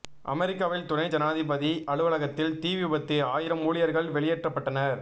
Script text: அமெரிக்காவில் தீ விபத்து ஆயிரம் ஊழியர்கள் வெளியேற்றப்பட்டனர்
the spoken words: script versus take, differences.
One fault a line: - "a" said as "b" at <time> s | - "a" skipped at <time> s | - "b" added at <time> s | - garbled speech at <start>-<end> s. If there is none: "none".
- "துணை ஜனாதிபதி அலுவலகத்தில்" added at 0.9 s